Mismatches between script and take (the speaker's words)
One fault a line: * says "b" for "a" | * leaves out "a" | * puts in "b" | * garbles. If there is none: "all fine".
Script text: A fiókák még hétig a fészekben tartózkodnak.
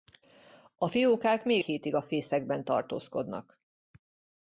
all fine